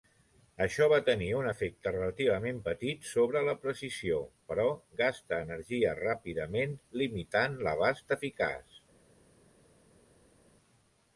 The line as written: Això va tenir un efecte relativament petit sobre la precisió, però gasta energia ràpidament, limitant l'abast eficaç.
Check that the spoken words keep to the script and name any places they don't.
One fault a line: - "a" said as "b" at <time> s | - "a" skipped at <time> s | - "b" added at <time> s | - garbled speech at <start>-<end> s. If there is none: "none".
none